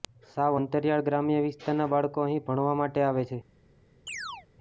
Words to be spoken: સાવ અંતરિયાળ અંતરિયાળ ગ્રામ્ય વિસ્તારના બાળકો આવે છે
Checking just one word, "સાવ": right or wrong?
right